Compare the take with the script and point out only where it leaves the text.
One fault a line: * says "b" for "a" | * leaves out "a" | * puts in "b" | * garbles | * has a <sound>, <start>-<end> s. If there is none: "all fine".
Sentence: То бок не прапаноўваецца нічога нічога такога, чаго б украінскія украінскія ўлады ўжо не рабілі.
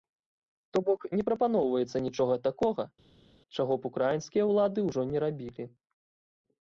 * leaves out "нічога"
* leaves out "украінскія"